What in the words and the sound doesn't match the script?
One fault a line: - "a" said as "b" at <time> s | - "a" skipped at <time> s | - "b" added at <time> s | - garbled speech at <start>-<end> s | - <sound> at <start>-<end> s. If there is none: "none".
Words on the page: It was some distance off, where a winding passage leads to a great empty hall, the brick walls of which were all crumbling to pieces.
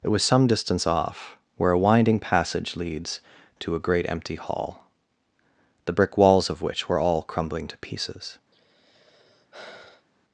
- sigh at 8.5-10.1 s